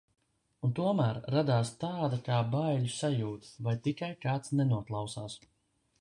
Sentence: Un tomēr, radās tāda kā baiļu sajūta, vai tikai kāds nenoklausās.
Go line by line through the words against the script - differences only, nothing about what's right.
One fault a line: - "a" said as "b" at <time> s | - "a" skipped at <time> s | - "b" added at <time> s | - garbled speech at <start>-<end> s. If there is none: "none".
none